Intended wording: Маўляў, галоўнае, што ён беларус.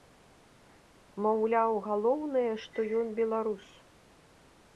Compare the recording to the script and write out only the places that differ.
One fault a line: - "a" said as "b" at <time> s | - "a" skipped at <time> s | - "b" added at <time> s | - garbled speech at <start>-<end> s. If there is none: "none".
none